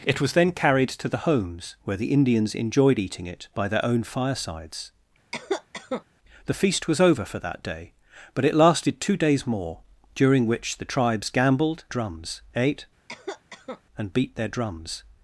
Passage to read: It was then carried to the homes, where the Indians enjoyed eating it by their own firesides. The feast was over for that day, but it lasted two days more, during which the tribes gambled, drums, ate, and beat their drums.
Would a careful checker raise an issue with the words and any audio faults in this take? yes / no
yes